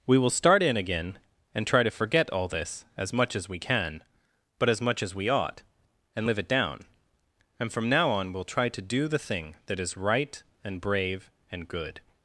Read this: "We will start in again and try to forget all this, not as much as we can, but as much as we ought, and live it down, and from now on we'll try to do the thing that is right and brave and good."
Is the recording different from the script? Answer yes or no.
yes